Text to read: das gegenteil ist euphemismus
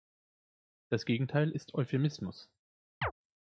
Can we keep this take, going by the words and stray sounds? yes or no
no